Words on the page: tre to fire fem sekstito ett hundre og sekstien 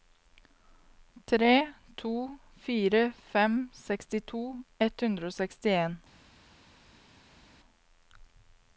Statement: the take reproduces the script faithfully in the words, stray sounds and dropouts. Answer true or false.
true